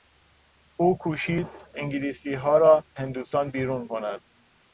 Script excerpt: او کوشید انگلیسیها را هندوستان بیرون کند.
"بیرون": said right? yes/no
yes